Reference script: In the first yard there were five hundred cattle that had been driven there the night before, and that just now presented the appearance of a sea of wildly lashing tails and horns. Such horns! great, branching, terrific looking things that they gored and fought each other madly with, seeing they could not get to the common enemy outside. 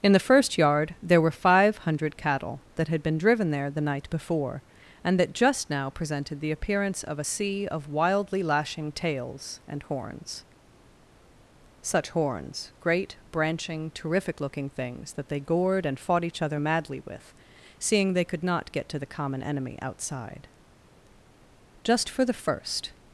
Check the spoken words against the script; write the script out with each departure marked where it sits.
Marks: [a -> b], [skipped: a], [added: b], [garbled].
In the first yard there were five hundred cattle that had been driven there the night before, and that just now presented the appearance of a sea of wildly lashing tails and horns. Such horns! great, branching, terrific looking things that they gored and fought each other madly with, seeing they could not get to the common enemy outside. [added: Just for the first]